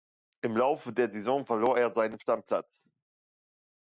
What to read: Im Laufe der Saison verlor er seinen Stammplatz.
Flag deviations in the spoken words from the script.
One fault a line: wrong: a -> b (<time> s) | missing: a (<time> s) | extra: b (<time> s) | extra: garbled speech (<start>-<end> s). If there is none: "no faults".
no faults